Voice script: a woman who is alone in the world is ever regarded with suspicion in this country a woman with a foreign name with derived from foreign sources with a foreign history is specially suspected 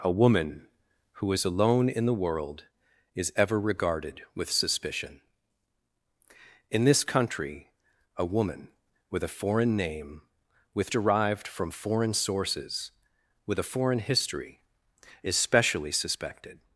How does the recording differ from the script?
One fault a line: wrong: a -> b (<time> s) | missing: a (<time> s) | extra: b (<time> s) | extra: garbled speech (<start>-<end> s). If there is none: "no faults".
no faults